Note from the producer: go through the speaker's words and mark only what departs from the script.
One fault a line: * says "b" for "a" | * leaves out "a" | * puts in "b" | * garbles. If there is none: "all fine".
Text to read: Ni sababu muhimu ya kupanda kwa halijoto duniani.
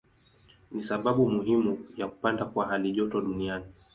all fine